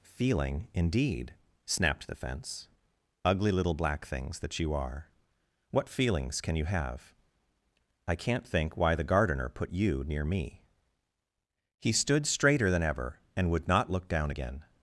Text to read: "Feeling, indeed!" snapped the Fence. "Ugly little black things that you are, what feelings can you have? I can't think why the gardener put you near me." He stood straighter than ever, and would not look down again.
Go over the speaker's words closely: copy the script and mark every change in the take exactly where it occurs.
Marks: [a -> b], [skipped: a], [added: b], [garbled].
"Feeling, indeed!" snapped the Fence. "Ugly little black things that you are, what feelings can you have? I can't think why the gardener put you near me." He stood straighter than ever, and would not look down again.